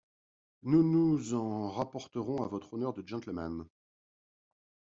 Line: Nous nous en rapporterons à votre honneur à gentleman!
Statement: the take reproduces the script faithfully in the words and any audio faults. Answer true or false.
false